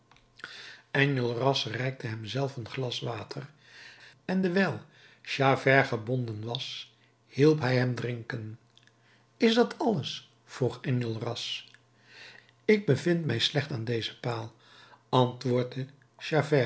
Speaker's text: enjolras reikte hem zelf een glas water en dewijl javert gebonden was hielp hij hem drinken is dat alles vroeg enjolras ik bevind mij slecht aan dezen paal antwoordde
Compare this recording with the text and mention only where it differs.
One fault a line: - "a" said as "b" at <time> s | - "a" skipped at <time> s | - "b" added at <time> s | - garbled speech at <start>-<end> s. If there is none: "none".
none